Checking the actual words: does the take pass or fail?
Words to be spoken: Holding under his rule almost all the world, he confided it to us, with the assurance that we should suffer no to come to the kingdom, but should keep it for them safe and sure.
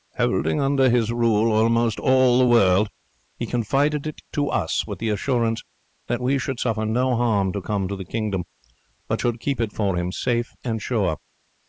fail